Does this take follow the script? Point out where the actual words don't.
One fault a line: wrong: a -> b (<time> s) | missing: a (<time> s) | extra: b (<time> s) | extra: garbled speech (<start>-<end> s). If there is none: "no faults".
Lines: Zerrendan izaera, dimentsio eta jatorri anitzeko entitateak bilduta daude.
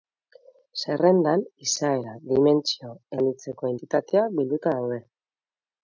missing: eta jatorri (2.9 s)